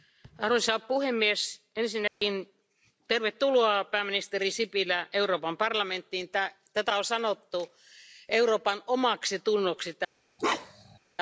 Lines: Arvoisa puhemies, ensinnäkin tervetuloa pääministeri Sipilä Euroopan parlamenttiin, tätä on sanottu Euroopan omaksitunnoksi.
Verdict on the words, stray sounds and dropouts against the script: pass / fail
fail